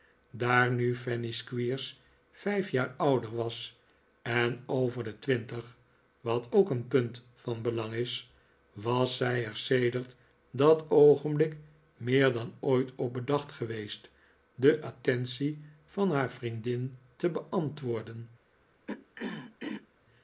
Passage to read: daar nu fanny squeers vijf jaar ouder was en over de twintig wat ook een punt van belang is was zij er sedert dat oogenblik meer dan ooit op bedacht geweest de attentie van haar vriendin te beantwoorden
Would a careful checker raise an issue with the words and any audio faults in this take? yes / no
yes